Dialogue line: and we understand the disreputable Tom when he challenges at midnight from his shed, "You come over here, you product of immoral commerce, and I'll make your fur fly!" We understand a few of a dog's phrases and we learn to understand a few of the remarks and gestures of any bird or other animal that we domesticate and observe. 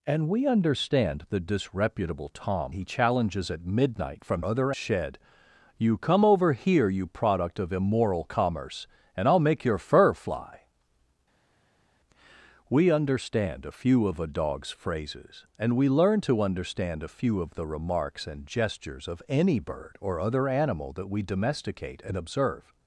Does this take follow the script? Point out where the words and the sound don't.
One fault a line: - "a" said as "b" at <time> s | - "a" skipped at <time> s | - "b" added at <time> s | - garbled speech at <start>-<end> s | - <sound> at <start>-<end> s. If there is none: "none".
- "when" skipped at 2.8 s
- "his" said as "other" at 4.4 s